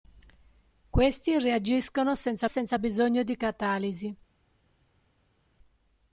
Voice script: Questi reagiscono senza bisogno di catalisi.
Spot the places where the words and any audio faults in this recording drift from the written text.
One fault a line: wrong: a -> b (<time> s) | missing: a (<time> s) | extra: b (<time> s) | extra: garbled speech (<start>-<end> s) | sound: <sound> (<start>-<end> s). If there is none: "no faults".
extra: senza (2.5 s)